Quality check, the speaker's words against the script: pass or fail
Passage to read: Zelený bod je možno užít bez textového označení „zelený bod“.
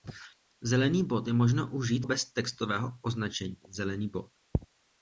pass